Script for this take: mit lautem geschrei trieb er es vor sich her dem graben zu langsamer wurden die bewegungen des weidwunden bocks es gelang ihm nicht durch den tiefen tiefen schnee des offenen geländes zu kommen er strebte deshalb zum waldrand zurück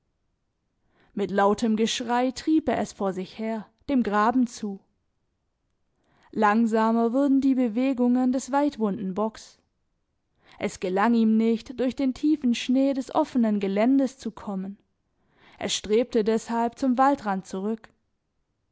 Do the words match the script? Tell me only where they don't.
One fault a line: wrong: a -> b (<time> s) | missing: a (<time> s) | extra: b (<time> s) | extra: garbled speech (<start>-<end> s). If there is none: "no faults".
missing: tiefen (12.6 s)